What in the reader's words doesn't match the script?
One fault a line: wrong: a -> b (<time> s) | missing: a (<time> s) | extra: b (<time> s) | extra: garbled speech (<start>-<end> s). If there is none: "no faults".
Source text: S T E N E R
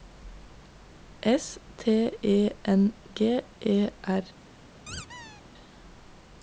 extra: G (3.1 s)